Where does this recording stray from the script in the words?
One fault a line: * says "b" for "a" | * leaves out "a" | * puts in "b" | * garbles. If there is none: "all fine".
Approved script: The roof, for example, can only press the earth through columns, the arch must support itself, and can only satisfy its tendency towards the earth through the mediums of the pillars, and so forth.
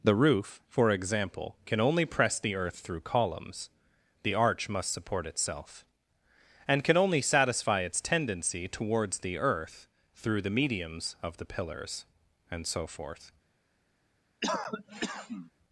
all fine